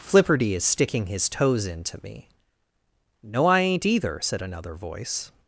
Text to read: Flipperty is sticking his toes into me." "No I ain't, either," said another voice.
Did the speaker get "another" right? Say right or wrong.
right